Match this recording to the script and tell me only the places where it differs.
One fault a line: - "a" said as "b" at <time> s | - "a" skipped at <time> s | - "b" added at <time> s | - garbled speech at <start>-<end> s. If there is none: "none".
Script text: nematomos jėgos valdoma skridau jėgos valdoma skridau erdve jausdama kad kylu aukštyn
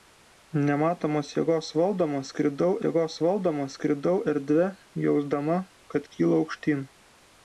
none